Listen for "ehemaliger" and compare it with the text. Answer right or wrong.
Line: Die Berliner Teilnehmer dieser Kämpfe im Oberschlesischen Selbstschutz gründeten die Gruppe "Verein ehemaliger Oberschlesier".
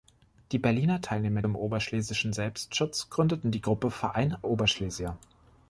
wrong